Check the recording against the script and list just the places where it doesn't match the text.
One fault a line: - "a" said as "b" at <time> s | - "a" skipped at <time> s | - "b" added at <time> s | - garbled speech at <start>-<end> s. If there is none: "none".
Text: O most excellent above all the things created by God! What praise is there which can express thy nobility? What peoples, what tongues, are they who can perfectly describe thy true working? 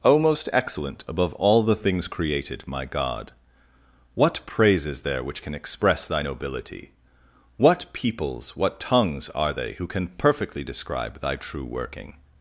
- "by" said as "my" at 2.6 s